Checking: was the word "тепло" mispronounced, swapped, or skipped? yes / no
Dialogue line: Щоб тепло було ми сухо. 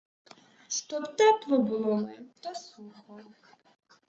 no